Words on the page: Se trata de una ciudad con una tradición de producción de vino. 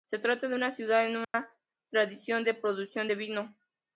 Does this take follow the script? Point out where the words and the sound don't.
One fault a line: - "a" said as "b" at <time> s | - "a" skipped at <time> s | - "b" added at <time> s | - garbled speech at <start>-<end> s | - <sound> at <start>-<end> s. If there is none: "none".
- dropout at 1.2-1.3 s